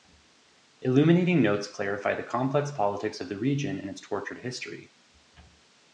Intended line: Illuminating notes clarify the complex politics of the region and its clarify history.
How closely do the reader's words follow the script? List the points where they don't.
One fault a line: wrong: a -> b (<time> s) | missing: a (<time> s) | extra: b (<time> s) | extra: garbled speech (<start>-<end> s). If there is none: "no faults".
wrong: clarify -> tortured (4.0 s)